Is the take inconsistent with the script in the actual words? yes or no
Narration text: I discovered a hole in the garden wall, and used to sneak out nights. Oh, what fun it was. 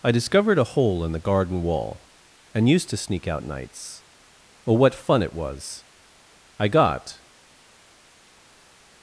yes